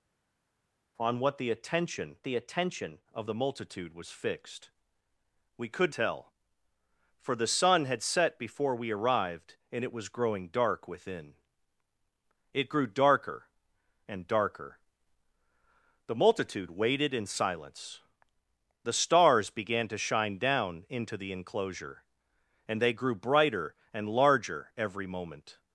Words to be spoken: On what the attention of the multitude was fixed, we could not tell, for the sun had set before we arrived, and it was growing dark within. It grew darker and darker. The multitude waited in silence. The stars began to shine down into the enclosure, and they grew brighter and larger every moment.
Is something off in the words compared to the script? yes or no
yes